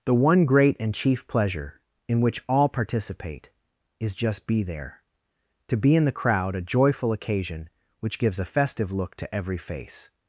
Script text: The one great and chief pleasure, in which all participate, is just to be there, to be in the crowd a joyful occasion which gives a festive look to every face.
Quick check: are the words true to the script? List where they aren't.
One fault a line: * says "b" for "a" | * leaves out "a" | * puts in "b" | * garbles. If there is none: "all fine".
* leaves out "to"